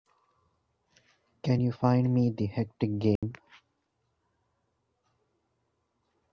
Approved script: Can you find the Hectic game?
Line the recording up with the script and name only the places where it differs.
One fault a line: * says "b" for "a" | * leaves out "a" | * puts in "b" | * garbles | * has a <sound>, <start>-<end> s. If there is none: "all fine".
* puts in "me"
* has a dropout, 3.2-3.2 s